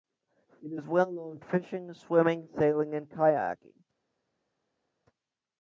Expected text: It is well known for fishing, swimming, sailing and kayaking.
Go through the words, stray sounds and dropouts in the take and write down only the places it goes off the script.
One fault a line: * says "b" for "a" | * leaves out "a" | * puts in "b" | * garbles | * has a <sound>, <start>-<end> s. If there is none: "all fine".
* leaves out "for"